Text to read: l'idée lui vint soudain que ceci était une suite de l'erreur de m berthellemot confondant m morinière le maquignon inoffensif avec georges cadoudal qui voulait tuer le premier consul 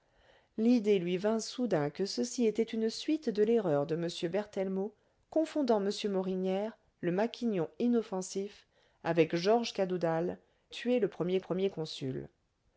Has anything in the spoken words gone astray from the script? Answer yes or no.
yes